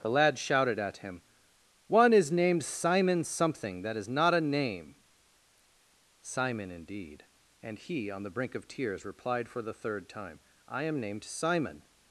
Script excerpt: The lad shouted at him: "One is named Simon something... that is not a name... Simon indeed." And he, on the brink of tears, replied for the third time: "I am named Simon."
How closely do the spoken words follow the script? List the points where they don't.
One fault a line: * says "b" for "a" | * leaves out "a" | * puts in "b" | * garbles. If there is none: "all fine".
all fine